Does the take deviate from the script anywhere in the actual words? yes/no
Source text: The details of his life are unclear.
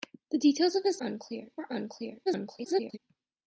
yes